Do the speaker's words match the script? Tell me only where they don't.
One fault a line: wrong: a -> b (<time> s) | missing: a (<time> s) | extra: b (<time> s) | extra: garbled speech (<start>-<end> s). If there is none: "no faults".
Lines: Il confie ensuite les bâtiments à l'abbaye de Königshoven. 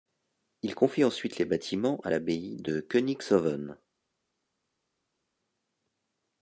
no faults